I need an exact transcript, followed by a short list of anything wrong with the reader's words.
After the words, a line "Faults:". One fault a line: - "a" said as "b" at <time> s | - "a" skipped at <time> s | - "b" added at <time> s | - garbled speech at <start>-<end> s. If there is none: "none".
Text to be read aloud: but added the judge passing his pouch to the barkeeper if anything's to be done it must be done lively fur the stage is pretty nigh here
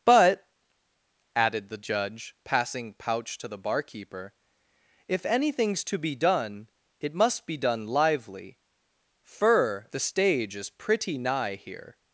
but added the judge passing pouch to the barkeeper if anything's to be done it must be done lively fur the stage is pretty nigh here
Faults:
- "his" skipped at 2.9 s